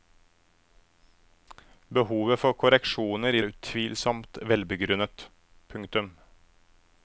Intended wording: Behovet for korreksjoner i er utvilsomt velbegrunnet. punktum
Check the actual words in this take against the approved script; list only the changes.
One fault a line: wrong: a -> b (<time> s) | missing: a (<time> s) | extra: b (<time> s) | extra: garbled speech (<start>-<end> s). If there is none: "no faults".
no faults